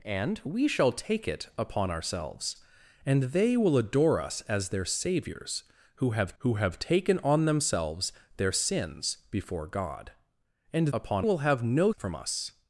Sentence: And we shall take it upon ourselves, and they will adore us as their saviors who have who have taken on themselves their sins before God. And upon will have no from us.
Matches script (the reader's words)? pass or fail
pass